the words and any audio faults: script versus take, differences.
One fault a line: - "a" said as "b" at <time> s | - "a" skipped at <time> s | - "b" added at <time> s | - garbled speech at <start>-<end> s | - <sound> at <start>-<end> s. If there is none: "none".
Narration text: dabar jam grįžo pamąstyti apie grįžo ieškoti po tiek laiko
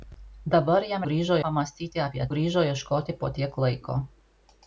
none